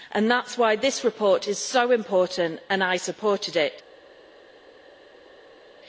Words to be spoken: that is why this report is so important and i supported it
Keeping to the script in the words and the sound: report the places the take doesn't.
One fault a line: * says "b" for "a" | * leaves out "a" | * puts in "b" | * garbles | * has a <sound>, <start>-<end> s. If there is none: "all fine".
all fine